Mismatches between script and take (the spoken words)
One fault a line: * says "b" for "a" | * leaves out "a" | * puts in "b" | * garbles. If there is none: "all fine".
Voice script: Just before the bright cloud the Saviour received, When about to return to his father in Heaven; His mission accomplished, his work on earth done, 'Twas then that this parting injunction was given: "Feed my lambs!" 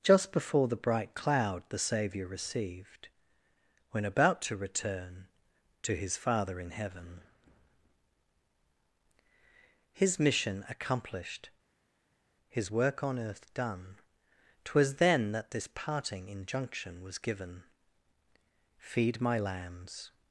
all fine